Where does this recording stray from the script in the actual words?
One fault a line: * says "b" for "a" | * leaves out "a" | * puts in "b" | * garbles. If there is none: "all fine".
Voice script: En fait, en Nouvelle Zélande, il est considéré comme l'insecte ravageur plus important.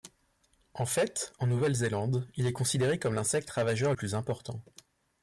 all fine